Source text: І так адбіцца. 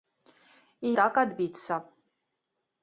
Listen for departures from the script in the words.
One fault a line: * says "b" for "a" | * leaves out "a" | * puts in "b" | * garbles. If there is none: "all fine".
all fine